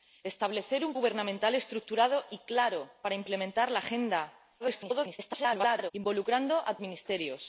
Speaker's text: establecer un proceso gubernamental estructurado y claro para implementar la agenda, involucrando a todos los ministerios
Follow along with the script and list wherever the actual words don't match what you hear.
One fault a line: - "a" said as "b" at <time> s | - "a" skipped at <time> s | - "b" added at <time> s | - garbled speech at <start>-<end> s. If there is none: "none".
- "proceso" skipped at 0.9 s
- garbled speech at 4.6-5.9 s
- "todos los" skipped at 6.8 s